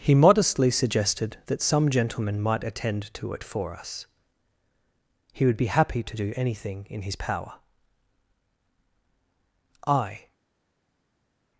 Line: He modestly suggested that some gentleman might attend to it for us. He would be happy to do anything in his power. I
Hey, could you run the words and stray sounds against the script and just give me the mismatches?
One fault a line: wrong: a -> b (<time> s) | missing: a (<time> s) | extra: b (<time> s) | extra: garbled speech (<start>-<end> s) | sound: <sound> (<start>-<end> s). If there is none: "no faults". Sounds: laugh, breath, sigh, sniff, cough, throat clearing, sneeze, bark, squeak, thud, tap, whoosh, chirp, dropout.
no faults